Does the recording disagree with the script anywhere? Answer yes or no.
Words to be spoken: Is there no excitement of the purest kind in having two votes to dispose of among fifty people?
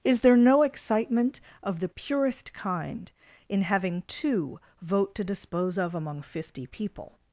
yes